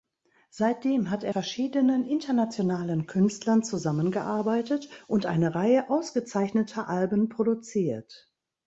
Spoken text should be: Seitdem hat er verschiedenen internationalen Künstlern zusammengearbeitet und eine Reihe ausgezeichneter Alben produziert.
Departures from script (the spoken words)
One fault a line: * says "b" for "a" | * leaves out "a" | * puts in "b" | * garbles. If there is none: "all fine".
all fine